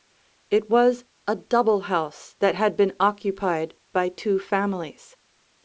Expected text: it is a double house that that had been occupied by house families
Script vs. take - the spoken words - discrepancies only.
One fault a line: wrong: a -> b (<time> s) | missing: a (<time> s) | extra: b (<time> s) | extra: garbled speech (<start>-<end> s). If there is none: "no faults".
wrong: is -> was (0.7 s)
missing: that (2.6 s)
wrong: house -> two (4.1 s)